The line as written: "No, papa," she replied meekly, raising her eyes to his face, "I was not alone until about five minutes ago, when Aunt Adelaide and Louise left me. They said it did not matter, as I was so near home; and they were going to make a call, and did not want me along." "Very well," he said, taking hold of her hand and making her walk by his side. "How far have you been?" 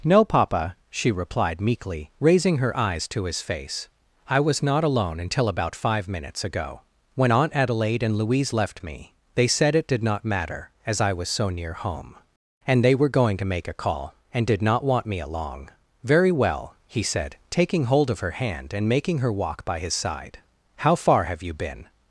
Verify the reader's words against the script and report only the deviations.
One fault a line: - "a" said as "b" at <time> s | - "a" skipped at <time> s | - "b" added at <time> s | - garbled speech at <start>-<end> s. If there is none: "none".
none